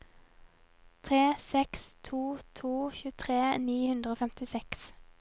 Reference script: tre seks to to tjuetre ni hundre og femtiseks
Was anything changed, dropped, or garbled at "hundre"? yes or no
no